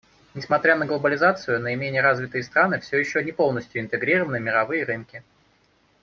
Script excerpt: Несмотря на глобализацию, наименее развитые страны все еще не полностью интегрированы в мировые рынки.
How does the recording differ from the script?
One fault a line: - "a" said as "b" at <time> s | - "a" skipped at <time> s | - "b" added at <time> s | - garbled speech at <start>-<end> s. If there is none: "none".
none